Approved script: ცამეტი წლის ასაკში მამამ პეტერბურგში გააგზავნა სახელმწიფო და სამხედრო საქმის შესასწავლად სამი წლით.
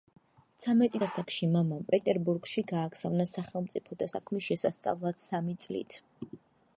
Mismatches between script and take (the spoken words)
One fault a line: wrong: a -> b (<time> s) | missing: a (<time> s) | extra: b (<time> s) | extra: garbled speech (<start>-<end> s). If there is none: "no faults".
missing: წლის (1.0 s)
missing: სამხედრო (4.1 s)